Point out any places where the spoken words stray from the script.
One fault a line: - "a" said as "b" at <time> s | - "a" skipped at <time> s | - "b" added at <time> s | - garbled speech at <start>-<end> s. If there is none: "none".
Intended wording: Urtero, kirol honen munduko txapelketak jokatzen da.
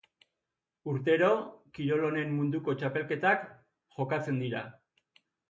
- "da" said as "dira" at 4.5 s